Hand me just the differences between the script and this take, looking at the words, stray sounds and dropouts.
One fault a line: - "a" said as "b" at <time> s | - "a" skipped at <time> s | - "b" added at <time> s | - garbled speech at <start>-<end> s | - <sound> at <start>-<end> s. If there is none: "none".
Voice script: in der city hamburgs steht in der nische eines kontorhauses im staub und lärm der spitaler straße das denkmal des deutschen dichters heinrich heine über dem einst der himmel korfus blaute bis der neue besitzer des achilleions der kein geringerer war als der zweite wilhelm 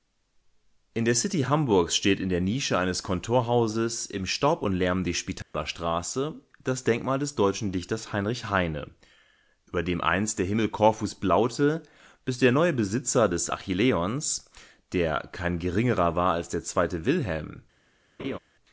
- dropout at 5.4-5.5 s
- laugh at 18.2-18.4 s